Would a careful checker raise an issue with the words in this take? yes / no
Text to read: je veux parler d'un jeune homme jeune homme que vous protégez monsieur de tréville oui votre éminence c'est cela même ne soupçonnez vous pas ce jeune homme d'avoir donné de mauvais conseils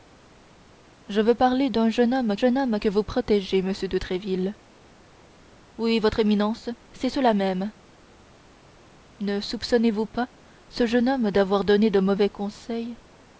no